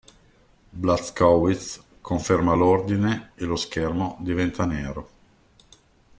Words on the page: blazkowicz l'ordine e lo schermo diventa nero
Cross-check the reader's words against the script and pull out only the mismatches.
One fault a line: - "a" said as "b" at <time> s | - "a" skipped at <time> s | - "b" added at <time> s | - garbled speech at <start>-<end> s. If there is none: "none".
- "conferma" added at 2.0 s